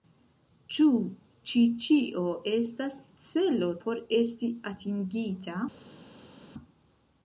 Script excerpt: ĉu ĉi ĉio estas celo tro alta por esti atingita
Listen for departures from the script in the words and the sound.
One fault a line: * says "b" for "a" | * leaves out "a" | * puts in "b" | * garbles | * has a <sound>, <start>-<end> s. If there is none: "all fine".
* leaves out "tro alta"